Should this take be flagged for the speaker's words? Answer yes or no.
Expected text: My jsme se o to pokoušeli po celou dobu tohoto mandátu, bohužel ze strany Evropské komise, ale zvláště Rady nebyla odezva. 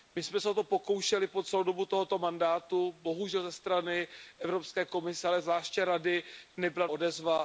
no